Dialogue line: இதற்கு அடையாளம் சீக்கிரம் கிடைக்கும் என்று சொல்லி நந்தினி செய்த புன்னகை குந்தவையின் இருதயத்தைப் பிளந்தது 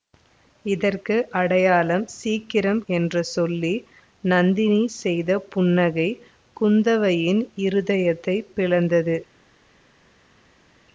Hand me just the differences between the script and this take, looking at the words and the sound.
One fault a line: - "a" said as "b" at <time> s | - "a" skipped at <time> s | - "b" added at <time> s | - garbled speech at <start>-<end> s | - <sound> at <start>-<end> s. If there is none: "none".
- "கிடைக்கும்" skipped at 2.8 s